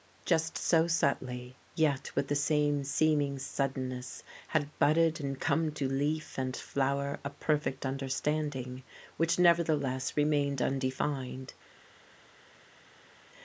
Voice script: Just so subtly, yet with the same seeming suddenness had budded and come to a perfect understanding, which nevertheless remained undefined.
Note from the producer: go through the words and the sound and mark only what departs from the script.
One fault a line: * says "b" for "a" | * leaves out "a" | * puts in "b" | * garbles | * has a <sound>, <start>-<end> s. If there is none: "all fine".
* puts in "leaf and flower"